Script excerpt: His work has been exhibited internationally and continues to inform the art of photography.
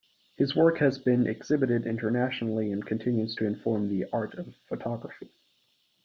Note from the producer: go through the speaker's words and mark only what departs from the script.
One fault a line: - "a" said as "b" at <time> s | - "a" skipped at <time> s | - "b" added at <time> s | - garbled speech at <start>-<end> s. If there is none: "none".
none